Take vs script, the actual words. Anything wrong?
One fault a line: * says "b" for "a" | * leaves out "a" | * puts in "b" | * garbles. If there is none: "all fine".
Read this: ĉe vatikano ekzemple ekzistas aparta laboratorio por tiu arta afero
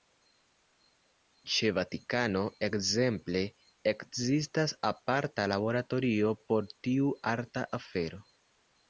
all fine